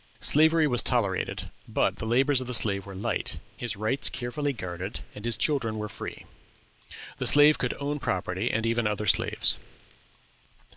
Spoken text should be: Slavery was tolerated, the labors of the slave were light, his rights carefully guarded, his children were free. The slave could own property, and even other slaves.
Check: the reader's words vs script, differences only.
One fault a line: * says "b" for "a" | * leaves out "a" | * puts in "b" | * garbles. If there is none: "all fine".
* puts in "but"
* puts in "and"